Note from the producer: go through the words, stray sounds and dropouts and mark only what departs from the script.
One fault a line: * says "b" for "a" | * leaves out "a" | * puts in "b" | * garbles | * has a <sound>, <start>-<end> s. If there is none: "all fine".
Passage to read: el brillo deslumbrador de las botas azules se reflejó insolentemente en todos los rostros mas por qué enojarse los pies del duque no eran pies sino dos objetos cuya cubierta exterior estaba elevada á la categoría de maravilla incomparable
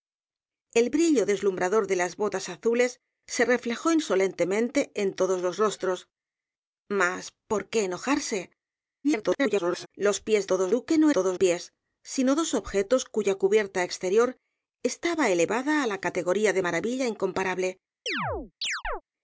* garbles
* says "todos" for "del"
* says "todos" for "eran"
* has a chirp, 18.1-19.0 s